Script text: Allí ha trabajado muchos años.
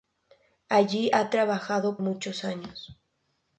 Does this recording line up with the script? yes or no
yes